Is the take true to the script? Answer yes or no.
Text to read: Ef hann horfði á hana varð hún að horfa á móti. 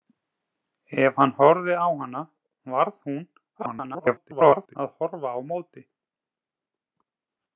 no